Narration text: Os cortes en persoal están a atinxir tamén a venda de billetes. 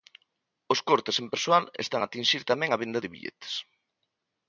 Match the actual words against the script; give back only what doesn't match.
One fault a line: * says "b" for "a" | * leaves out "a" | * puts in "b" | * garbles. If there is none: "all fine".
all fine